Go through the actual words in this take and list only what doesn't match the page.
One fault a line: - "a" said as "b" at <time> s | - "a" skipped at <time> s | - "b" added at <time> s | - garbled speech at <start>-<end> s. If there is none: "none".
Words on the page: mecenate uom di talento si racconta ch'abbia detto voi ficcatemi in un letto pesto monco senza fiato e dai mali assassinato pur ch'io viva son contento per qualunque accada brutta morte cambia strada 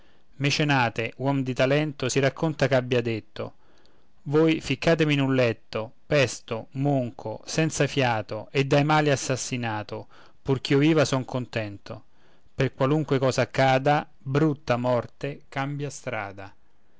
- "cosa" added at 13.2 s